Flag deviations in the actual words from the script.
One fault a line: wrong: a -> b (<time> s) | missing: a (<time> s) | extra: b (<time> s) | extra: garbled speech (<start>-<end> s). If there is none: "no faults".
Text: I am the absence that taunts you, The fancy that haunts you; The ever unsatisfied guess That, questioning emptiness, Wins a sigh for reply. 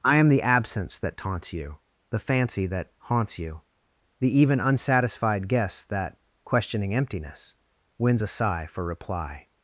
wrong: ever -> even (4.3 s)